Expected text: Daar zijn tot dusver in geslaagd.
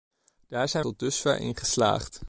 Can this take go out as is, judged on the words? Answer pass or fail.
pass